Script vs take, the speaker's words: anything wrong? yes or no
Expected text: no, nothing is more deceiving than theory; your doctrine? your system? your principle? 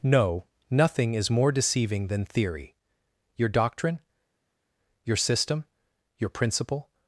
no